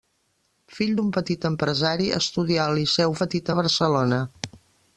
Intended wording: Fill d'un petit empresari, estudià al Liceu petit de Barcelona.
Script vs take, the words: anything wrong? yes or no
no